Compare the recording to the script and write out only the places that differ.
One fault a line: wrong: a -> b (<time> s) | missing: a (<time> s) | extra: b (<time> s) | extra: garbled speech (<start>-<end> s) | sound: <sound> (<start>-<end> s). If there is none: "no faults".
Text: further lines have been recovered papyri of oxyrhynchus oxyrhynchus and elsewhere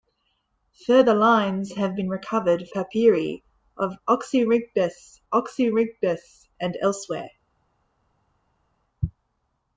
no faults